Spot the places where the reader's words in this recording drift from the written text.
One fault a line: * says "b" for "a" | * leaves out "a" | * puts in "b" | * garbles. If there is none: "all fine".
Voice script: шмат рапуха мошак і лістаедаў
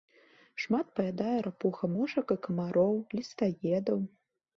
* puts in "паядае"
* puts in "камароў"